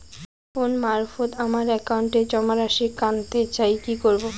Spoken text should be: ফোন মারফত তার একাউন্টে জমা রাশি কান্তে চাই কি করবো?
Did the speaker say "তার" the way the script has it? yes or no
no